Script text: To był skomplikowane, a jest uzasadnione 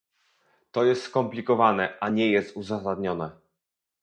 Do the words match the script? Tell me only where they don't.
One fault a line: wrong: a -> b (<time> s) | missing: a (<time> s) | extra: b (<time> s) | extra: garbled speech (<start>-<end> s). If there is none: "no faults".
wrong: był -> jest (0.8 s)
extra: nie (2.1 s)